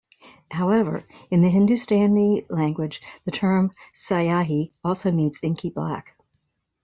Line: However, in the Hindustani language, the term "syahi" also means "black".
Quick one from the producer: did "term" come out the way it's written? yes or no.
yes